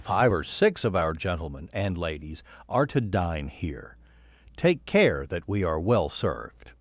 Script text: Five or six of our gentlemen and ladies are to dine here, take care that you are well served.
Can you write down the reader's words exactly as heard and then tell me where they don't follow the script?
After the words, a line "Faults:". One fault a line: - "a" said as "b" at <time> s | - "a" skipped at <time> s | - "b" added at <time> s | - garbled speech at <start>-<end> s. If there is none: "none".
Five or six of our gentlemen and ladies are to dine here, take care that we are well served.
Faults:
- "you" said as "we" at 5.5 s